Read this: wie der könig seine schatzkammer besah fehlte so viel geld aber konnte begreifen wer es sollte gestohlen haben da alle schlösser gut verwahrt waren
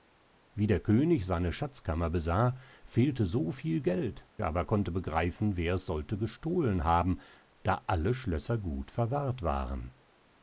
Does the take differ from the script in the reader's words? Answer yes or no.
no